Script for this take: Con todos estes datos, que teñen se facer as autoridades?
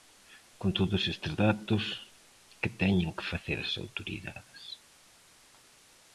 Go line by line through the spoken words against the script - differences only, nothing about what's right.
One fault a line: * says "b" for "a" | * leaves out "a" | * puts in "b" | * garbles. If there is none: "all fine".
* says "que" for "se"